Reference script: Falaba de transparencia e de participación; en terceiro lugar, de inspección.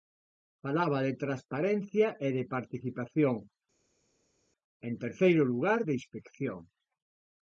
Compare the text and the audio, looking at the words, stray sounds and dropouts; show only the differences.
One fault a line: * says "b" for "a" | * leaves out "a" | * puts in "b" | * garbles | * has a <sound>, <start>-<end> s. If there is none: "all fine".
all fine